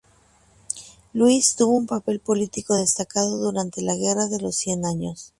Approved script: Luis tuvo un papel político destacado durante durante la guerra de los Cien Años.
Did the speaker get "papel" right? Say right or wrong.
right